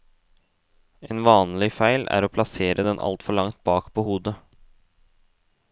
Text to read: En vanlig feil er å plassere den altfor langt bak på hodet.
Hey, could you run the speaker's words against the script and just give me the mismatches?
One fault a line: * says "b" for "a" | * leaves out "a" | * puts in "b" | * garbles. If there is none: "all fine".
all fine